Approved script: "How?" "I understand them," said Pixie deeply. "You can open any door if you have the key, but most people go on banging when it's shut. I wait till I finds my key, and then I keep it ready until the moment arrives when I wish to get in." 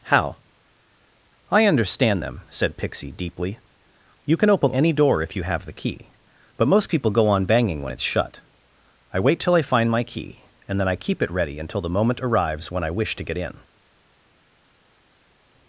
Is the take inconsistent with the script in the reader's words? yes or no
yes